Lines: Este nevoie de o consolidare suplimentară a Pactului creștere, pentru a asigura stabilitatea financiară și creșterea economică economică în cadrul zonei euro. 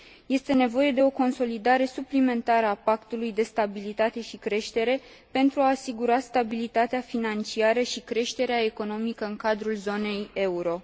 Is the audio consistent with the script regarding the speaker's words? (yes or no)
no